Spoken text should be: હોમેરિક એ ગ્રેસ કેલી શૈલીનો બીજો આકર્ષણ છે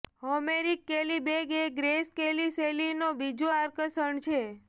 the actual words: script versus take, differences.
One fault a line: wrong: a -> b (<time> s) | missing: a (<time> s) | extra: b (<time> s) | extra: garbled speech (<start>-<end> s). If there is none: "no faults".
extra: કેલી બેગ (0.8 s)